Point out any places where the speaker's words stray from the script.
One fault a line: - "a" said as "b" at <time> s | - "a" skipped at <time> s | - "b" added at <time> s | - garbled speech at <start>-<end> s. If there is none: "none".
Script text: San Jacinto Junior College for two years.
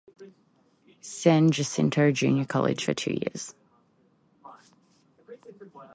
none